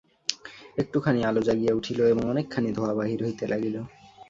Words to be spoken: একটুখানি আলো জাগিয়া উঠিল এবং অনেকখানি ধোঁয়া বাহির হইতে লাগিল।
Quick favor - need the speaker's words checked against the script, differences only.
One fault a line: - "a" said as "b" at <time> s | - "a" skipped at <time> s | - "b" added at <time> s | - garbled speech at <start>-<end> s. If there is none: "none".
none